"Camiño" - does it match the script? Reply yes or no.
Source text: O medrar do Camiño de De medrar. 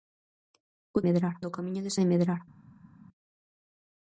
yes